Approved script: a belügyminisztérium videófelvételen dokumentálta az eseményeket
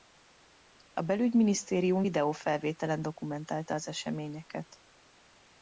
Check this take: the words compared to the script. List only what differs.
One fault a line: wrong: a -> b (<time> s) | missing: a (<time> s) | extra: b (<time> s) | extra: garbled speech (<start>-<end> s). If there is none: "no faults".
no faults